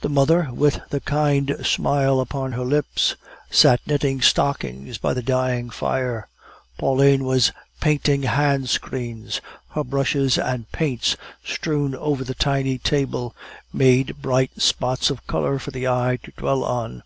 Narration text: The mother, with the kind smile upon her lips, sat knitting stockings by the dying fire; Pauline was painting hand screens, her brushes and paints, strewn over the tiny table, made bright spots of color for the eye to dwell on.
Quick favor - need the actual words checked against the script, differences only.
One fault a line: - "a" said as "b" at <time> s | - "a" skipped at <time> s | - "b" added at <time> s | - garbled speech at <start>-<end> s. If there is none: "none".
none